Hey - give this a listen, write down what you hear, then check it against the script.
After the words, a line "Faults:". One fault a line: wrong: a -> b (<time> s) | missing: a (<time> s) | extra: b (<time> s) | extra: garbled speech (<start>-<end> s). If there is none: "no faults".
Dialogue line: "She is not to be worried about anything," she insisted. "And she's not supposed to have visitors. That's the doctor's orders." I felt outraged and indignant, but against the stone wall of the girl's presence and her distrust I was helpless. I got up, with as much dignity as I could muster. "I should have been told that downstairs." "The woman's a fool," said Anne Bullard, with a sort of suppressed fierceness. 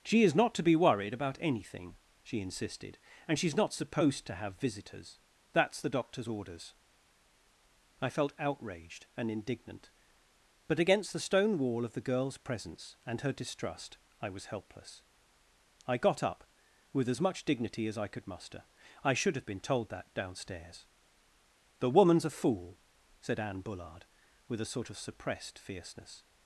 "She is not to be worried about anything," she insisted. "And she's not supposed to have visitors. That's the doctor's orders." I felt outraged and indignant, but against the stone wall of the girl's presence and her distrust I was helpless. I got up, with as much dignity as I could muster. "I should have been told that downstairs." "The woman's a fool," said Anne Bullard, with a sort of suppressed fierceness.
Faults:
no faults